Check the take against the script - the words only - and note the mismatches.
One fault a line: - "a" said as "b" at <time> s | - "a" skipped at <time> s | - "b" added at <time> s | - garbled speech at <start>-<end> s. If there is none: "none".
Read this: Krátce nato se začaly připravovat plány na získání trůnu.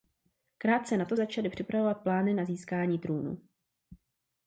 - "se" skipped at 1.2 s